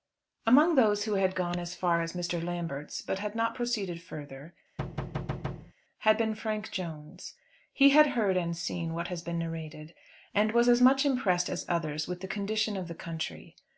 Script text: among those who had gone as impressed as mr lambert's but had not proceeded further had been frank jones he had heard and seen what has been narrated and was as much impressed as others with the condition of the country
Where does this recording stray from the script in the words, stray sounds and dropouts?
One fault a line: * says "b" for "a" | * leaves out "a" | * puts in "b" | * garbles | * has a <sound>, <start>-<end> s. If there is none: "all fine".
* says "far" for "impressed"
* has a thud, 4.8-5.7 s